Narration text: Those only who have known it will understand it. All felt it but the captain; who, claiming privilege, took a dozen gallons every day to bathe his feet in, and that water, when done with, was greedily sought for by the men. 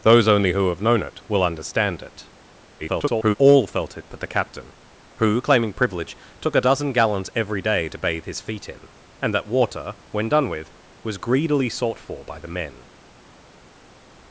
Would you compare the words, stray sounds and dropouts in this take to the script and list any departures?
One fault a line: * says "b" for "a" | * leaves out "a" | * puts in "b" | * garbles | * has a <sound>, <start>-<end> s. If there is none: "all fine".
* garbles